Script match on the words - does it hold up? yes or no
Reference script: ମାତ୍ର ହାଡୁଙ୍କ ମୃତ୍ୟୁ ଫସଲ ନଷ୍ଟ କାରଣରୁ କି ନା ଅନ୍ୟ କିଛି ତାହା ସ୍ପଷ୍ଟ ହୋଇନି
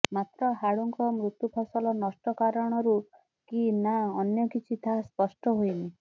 yes